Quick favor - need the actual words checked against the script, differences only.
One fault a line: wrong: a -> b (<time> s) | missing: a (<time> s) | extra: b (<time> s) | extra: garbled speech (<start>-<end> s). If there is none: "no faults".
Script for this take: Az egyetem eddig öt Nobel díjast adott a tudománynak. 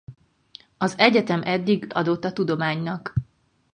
missing: öt Nobel díjast (1.9 s)